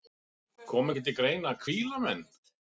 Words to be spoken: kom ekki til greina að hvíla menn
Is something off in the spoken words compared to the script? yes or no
no